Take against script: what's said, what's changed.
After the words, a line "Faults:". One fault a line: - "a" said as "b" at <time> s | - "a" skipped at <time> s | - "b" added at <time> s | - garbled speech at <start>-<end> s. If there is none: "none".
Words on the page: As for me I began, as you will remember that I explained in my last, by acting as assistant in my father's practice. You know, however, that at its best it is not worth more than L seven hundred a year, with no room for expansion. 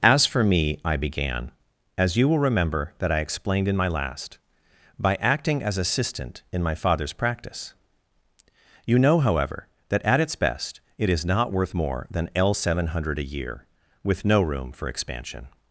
As for me I began, as you will remember that I explained in my last, by acting as assistant in my father's practice. You know, however, that at its best it is not worth more than L seven hundred a year, with no room for expansion.
Faults:
none